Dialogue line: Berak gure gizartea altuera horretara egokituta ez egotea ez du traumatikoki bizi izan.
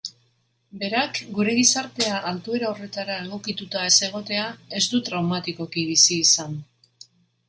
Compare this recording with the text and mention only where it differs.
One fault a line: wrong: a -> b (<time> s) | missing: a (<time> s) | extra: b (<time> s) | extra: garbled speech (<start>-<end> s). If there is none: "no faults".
no faults